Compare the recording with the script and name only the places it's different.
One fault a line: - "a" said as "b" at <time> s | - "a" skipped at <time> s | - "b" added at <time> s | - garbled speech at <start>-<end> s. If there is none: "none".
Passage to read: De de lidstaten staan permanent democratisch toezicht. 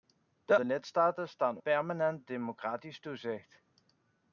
none